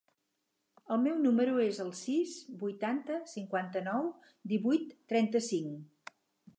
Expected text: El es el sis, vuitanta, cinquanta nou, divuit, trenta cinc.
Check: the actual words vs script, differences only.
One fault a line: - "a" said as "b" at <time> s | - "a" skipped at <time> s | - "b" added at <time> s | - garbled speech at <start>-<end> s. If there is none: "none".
- "meu número" added at 1.0 s